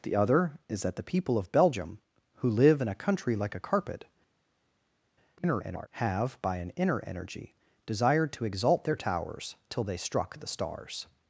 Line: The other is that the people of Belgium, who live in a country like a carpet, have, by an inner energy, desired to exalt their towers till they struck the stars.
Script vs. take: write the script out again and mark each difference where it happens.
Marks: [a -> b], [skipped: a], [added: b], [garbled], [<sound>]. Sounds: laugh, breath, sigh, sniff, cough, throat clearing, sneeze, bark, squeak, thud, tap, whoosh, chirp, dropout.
The other is that the people of Belgium, who live in a country like a carpet, [garbled] have, by an inner energy, desired to exalt their towers till they struck the stars.